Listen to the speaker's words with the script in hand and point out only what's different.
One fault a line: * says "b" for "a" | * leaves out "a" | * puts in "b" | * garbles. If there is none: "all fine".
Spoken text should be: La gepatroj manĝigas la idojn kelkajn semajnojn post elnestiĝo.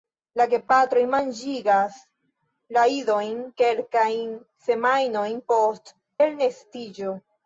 all fine